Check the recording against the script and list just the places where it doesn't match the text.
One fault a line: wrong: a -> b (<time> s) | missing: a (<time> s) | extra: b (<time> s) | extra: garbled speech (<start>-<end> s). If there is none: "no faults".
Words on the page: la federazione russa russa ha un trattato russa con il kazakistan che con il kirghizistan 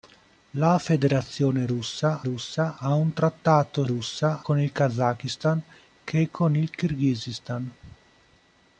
no faults